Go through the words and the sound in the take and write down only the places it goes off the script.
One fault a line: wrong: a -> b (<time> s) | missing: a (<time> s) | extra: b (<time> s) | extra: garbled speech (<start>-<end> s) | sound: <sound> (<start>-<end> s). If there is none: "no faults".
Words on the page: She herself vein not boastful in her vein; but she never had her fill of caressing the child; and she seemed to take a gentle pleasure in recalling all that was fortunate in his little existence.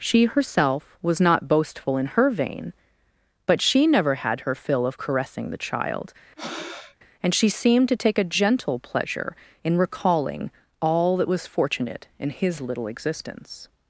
wrong: vein -> was (1.0 s)
sound: breath (6.4-7.0 s)